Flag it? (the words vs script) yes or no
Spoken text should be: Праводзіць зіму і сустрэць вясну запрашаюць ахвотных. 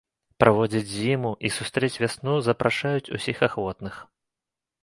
yes